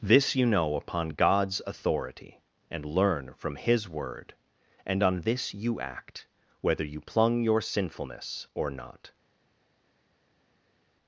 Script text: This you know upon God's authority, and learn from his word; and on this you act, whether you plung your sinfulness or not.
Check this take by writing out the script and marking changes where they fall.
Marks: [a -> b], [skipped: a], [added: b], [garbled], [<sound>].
This you know upon God's authority, and learn from his word; and on this you act, whether you plung your sinfulness or not.